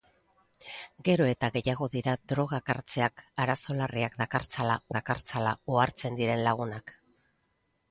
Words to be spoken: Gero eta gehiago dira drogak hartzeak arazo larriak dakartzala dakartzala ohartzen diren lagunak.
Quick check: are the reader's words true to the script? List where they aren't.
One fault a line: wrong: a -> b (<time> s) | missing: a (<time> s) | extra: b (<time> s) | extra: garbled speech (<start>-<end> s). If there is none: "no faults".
no faults